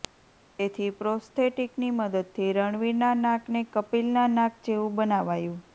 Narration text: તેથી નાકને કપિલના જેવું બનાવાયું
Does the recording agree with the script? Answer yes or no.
no